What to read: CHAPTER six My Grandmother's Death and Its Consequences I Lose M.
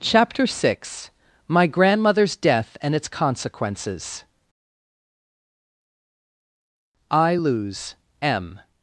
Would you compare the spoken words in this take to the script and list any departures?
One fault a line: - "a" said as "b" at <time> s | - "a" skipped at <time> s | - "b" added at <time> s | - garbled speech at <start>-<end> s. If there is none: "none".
none